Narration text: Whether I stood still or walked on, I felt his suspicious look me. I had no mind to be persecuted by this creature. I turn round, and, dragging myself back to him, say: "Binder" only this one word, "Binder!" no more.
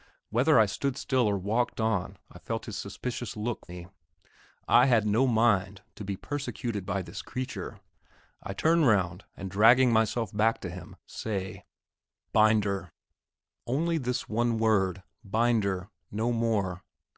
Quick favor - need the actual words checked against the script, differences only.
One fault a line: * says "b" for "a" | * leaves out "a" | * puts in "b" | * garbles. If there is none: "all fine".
all fine